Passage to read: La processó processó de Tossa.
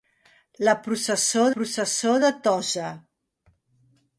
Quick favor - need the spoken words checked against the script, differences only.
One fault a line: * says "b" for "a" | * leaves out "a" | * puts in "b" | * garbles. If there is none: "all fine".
all fine